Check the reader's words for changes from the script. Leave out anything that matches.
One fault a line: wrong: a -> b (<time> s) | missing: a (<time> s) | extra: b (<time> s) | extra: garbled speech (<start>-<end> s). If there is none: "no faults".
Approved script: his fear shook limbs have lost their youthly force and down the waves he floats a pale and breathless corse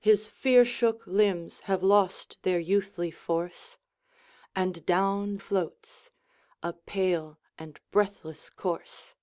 missing: the waves he (5.4 s)